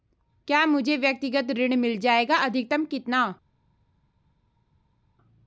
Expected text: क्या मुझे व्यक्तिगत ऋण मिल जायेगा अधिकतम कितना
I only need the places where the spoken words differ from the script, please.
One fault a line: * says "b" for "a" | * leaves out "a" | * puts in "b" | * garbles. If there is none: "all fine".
all fine